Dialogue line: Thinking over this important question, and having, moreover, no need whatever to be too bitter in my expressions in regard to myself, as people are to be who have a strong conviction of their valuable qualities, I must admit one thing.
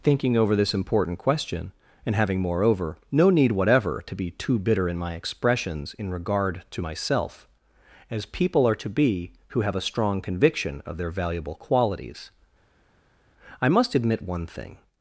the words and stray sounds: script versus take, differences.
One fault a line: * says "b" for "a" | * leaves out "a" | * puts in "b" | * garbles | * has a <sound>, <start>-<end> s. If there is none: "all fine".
all fine